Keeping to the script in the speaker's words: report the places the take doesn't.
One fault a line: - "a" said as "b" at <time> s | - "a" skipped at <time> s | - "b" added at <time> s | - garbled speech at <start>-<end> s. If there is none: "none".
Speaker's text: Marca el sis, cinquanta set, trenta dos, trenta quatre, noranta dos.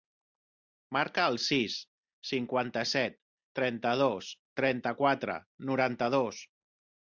none